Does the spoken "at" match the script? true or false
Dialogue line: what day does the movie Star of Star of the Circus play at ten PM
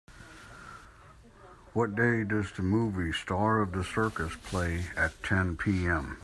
true